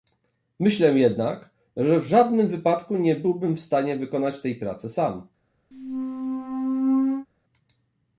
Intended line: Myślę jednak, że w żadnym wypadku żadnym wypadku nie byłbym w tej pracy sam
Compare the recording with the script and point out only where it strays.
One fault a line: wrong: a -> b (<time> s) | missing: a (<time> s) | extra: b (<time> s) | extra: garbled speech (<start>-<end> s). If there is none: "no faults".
missing: żadnym wypadku (3.0 s)
extra: stanie wykonać (3.6 s)